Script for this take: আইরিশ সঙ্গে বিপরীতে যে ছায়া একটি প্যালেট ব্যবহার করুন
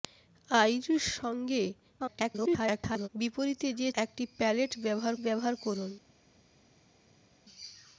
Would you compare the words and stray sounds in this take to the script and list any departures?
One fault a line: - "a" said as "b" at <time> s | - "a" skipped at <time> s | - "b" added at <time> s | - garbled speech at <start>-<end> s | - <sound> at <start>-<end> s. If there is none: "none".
- garbled speech at 2.0-3.1 s
- "ছায়া" skipped at 3.9 s
- "ব্যবহার" added at 5.2 s